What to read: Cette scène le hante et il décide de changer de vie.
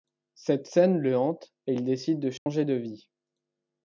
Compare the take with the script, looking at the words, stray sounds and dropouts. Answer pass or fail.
fail